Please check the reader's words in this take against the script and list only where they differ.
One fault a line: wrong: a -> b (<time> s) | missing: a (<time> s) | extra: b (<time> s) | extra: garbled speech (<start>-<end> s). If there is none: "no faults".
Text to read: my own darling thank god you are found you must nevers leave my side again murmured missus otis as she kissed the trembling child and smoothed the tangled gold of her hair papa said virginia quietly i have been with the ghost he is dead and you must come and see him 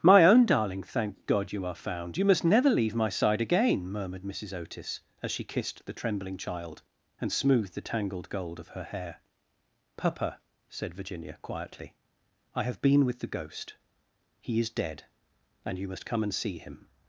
wrong: nevers -> never (2.4 s)